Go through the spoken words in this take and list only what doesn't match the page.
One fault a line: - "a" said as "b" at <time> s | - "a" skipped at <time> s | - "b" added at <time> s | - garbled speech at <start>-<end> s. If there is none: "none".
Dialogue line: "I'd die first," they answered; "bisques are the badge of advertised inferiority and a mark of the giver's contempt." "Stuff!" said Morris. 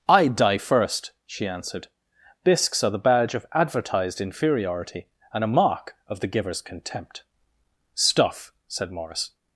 - "they" said as "she" at 1.2 s